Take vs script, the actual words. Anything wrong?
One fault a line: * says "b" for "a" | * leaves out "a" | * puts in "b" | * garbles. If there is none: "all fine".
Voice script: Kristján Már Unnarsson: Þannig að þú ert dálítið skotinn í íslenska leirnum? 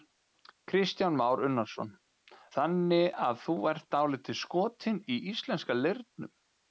all fine